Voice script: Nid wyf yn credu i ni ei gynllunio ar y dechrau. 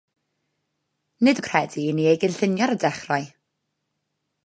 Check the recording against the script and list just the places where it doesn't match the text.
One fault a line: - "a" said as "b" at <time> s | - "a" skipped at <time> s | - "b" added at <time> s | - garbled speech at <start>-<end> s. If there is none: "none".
- "wyf" skipped at 1.4 s